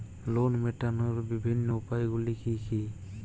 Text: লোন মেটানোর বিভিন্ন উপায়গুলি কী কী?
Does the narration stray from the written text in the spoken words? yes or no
no